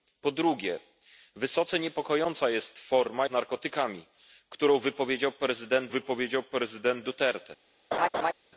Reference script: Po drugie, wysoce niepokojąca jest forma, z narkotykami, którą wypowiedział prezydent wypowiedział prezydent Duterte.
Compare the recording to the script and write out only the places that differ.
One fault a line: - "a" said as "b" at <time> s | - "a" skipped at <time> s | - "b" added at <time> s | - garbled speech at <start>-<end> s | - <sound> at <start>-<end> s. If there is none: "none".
- laugh at 7.9-8.3 s